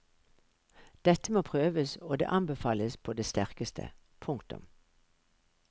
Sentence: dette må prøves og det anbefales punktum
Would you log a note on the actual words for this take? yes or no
yes